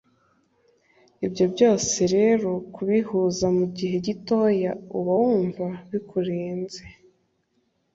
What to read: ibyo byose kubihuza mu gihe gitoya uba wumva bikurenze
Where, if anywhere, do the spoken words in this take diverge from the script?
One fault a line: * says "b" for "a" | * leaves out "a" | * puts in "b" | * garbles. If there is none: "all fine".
* puts in "rero"